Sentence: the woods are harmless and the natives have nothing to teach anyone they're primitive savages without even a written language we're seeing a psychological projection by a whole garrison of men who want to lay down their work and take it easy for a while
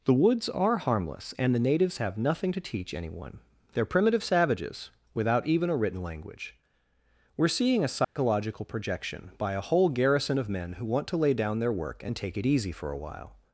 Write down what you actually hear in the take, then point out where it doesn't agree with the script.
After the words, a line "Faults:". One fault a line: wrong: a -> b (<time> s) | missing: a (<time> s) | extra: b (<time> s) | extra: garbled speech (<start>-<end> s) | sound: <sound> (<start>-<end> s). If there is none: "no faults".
the woods are harmless and the natives have nothing to teach anyone they're primitive savages without even a written language we're seeing a psychological projection by a whole garrison of men who want to lay down their work and take it easy for a while
Faults:
sound: dropout (8.0-8.2 s)